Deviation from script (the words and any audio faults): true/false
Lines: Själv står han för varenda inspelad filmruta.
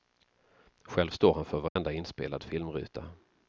true